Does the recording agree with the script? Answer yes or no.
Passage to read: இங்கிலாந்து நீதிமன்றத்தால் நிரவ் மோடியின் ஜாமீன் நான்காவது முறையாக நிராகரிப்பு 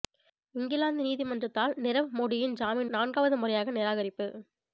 yes